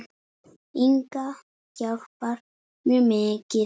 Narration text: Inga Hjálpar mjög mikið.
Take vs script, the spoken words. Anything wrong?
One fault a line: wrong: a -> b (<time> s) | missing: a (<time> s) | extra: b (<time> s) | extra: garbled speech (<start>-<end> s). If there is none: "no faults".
no faults